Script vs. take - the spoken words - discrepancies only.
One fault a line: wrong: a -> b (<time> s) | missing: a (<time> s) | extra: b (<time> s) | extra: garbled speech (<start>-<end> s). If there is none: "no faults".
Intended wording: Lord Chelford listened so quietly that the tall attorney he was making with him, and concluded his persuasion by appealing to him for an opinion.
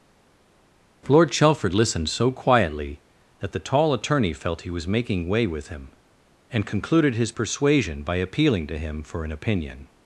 extra: felt (4.3 s)
extra: way (5.3 s)